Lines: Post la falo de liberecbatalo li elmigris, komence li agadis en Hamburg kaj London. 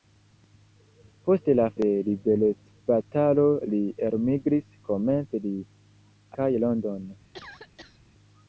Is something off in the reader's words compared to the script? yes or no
yes